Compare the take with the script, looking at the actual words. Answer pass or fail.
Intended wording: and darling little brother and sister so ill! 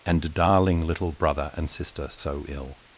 pass